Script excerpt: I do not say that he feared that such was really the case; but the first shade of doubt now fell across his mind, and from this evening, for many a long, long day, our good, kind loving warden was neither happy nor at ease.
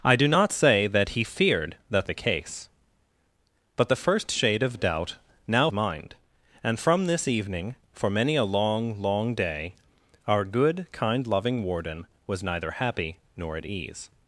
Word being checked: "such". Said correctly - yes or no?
no